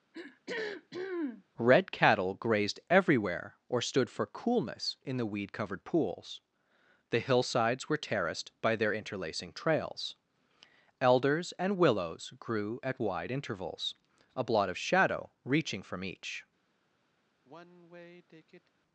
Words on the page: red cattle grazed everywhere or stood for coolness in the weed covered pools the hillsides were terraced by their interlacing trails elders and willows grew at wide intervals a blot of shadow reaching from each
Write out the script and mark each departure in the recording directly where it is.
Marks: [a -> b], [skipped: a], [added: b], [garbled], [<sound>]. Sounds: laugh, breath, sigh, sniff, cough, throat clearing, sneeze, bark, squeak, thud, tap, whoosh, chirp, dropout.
[throat clearing] red cattle grazed everywhere or stood for coolness in the weed covered pools the hillsides were terraced by their interlacing trails elders and willows grew at wide intervals a blot of shadow reaching from each [sigh]